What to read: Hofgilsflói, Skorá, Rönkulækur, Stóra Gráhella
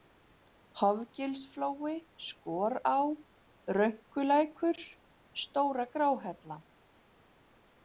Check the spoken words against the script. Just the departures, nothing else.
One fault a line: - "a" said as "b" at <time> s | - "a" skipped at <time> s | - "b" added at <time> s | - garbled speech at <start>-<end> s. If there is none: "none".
none